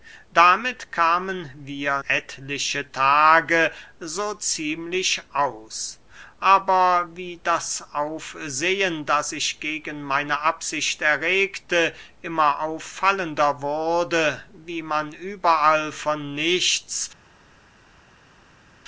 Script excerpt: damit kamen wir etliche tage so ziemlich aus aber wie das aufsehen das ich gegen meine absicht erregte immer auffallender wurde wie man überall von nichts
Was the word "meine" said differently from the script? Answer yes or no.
no